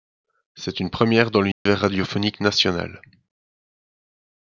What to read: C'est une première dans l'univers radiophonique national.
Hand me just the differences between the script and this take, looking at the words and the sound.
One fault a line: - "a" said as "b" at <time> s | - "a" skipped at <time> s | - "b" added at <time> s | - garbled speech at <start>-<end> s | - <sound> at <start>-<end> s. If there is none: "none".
- dropout at 1.5-1.7 s